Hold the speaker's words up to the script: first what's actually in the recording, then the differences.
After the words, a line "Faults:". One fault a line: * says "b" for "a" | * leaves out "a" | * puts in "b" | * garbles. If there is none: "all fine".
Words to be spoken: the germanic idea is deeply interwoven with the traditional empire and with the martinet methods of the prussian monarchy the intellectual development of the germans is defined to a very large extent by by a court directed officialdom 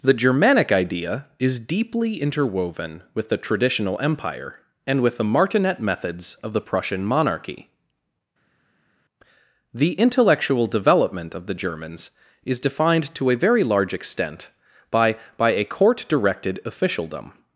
the germanic idea is deeply interwoven with the traditional empire and with the martinet methods of the prussian monarchy the intellectual development of the germans is defined to a very large extent by by a court directed officialdom
Faults:
all fine